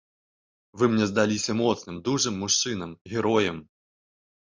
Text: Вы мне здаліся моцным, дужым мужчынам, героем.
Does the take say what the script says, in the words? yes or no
yes